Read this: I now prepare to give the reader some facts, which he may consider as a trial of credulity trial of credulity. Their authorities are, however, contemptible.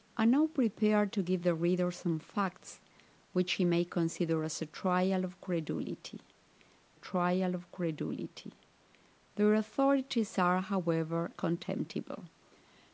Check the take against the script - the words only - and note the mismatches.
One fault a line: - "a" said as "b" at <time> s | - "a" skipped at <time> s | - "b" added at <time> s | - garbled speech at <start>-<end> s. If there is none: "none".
none